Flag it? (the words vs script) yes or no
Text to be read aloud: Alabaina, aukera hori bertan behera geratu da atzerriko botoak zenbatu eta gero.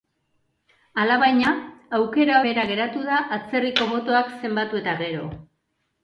yes